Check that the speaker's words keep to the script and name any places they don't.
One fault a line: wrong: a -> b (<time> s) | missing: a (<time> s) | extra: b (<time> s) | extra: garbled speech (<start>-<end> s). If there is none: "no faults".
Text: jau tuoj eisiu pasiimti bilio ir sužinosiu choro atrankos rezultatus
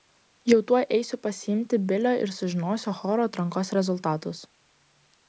no faults